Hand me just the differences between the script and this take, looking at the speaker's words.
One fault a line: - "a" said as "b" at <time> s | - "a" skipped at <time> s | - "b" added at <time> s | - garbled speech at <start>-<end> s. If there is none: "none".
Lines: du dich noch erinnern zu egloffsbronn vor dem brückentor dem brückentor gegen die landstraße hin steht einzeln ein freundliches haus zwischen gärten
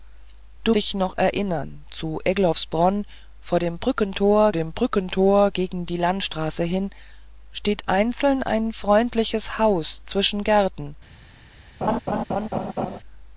none